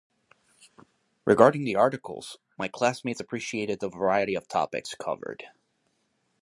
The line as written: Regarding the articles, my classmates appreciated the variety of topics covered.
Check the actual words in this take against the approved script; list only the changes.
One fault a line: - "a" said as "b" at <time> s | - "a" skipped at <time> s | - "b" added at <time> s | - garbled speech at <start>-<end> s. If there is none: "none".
none